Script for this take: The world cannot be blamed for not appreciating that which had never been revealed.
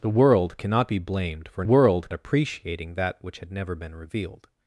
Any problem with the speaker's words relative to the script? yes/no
yes